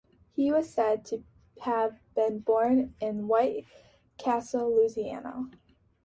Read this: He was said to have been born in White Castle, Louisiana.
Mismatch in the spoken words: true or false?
false